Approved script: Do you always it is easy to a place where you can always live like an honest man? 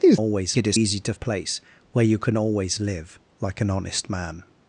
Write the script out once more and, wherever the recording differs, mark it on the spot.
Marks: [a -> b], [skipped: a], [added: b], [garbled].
Do you always it is easy to a place where you can always live like an honest man?